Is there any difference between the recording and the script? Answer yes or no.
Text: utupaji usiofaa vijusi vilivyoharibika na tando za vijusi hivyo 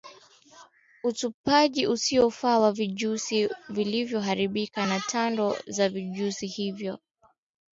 yes